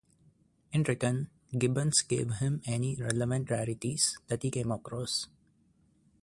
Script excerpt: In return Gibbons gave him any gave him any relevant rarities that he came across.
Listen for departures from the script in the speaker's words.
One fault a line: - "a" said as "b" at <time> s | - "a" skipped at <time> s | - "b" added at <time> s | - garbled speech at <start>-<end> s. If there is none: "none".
- "gave him any" skipped at 3.0 s